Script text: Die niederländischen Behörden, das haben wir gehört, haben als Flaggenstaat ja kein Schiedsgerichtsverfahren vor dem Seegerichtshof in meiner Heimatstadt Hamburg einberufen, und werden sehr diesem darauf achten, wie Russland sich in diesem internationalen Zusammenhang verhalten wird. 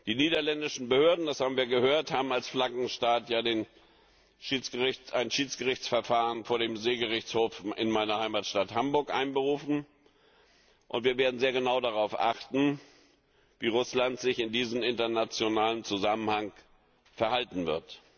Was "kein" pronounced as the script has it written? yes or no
no